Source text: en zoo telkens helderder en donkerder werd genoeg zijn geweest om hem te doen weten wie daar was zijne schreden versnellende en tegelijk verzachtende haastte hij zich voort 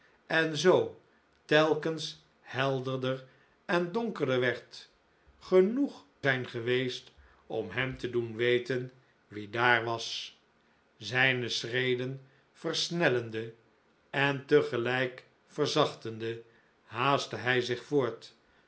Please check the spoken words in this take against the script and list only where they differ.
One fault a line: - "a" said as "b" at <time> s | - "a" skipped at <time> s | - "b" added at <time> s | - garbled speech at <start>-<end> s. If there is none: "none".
none